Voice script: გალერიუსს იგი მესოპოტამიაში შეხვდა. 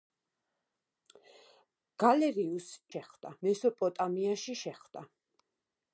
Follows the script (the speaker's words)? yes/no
no